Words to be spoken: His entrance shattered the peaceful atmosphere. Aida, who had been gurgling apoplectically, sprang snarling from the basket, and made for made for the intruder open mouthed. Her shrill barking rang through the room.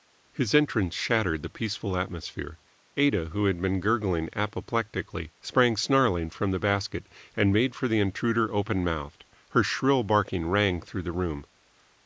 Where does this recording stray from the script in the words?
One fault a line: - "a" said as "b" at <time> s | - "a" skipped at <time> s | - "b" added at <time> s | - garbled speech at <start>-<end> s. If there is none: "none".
- "made for" skipped at 7.9 s